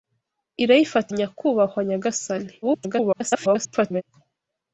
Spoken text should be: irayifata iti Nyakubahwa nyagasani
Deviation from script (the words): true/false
true